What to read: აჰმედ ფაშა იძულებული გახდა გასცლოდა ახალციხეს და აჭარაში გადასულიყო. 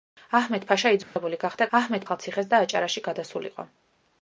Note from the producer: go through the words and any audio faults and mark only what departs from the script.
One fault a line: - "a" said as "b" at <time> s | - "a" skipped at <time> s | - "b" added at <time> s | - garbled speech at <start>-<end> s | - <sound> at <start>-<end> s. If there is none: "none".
- dropout at 1.0-1.2 s
- "გასცლოდა" said as "აჰმედ" at 1.8 s